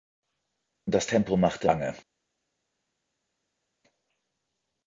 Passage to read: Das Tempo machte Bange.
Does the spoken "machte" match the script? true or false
true